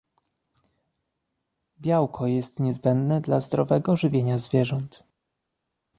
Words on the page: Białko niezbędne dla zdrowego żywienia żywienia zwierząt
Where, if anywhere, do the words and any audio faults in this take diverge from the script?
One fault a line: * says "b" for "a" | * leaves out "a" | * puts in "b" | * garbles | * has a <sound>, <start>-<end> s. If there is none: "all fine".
* puts in "jest"
* leaves out "żywienia"